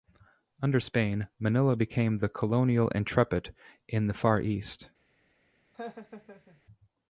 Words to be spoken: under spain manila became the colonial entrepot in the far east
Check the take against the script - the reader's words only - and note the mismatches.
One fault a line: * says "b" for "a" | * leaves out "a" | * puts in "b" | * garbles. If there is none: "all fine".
all fine